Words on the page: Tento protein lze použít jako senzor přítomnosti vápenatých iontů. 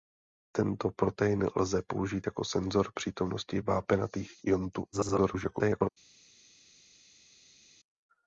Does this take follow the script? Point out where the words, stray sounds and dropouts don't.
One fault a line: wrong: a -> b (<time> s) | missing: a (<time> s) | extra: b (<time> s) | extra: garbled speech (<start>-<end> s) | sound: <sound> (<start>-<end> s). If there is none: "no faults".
extra: garbled speech (4.9-5.9 s)